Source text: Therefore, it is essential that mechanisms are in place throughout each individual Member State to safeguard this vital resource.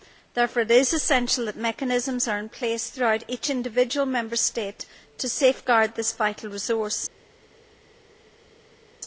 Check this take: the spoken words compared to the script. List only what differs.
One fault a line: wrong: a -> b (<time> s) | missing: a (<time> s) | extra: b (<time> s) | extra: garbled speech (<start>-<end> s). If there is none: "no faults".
no faults